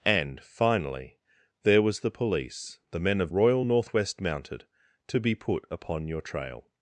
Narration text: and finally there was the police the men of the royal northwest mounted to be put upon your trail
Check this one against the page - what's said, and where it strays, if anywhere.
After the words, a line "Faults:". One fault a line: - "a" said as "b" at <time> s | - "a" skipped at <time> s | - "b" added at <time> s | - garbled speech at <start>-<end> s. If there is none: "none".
and finally there was the police the men of royal northwest mounted to be put upon your trail
Faults:
- "the" skipped at 3.3 s